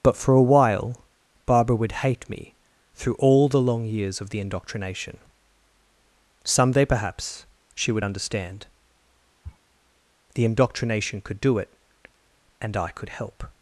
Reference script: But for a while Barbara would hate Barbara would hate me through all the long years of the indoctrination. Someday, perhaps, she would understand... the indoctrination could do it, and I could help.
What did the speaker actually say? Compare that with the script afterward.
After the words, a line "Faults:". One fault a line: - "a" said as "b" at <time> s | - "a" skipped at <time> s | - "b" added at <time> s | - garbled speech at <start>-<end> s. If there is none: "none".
But for a while Barbara would hate me through all the long years of the indoctrination. Someday, perhaps, she would understand... the indoctrination could do it, and I could help.
Faults:
- "Barbara would hate" skipped at 2.3 s